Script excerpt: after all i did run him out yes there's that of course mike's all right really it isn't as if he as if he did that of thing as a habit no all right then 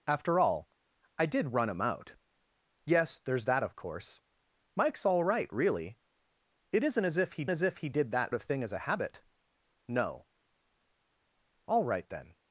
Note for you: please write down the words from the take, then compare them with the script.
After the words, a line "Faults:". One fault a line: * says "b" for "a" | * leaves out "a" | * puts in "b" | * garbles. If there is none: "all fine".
after all i did run him out yes there's that of course mike's all right really it isn't as if he as if he did that of thing as a habit no all right then
Faults:
all fine